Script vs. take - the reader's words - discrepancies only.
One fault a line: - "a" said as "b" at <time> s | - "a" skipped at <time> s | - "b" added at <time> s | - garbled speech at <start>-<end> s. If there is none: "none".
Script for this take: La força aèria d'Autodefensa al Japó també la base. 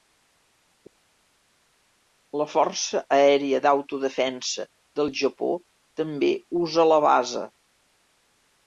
- "al" said as "del" at 5.0 s
- "usa" added at 6.7 s